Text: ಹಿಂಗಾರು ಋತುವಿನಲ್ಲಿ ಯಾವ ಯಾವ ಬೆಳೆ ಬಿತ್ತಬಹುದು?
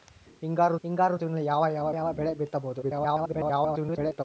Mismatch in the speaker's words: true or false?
true